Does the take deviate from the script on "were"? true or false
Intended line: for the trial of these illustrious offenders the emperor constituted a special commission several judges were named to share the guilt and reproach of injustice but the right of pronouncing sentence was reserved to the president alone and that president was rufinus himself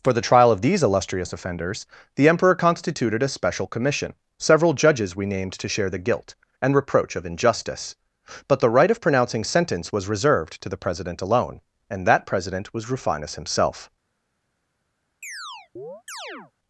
true